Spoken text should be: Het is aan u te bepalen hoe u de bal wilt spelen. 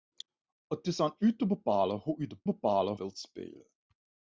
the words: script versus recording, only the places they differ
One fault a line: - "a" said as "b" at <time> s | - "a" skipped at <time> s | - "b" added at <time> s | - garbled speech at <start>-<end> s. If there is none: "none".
- "bal" said as "bepalen" at 2.4 s